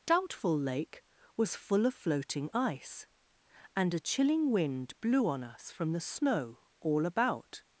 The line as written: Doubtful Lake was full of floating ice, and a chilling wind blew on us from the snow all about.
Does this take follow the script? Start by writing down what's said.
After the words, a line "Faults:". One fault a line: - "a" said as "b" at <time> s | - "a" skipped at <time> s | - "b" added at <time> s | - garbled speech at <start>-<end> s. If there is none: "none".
Doubtful Lake was full of floating ice, and a chilling wind blew on us from the snow all about.
Faults:
none